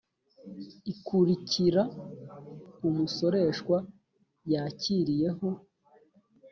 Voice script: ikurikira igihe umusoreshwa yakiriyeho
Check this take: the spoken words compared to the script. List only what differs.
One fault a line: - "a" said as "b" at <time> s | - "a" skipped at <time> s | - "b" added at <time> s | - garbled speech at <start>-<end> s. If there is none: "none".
- "igihe" skipped at 1.8 s